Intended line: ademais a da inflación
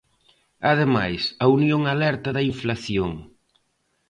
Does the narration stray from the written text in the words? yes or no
yes